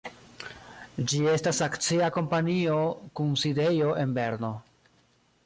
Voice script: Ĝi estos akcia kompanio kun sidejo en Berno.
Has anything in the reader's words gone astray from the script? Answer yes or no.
yes